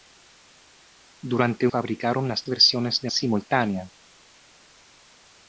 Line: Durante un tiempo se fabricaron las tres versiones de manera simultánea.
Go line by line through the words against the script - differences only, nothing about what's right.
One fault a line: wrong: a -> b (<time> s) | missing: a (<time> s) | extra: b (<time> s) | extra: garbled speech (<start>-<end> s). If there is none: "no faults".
missing: un tiempo se (1.7 s)
missing: tres (2.4 s)
missing: manera (3.1 s)